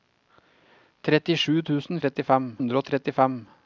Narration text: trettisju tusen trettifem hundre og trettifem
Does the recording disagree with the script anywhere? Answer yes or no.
no